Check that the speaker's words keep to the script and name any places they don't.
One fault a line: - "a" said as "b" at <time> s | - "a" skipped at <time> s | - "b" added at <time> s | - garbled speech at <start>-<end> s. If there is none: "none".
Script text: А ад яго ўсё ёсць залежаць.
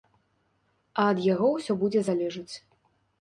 - "ёсць" said as "будзе" at 1.8 s